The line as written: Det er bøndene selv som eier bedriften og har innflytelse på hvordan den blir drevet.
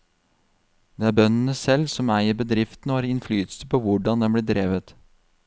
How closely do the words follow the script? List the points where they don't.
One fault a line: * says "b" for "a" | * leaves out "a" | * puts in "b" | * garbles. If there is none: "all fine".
all fine